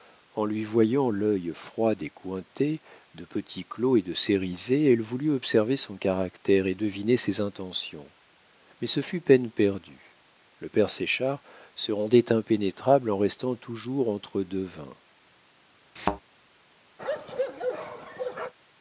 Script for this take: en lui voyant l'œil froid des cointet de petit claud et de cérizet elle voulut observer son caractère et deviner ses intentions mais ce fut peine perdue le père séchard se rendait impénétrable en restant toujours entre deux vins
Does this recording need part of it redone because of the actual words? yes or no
no